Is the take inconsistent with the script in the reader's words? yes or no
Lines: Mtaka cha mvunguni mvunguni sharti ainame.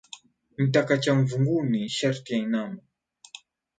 yes